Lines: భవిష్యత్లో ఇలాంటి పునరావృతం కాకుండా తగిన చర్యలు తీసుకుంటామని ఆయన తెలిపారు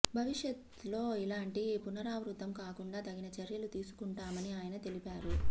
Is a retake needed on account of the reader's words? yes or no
no